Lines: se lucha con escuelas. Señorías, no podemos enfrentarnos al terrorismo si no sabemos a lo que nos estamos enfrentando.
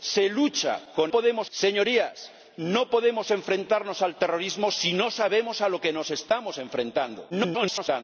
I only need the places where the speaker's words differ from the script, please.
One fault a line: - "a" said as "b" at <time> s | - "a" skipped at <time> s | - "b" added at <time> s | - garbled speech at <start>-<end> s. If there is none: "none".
- "escuelas" said as "podemos" at 1.1 s
- garbled speech at 7.3-8.0 s